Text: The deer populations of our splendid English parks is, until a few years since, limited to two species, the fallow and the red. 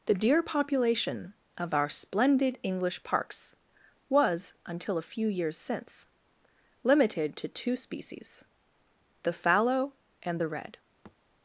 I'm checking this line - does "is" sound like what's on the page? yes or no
no